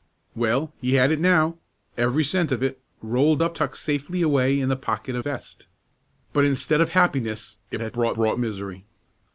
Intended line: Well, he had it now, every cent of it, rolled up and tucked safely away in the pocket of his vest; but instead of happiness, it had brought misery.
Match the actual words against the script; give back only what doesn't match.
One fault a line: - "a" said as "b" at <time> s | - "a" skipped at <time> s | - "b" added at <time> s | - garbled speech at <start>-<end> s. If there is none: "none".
- "and" skipped at 3.6 s
- "his" skipped at 5.2 s
- "brought" added at 8.1 s